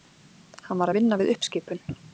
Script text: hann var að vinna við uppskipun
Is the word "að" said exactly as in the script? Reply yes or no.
yes